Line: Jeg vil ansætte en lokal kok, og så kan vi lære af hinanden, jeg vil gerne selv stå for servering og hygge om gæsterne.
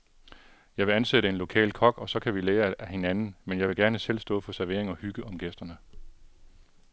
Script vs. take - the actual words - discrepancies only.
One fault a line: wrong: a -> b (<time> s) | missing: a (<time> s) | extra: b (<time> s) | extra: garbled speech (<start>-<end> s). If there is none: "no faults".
extra: men (3.5 s)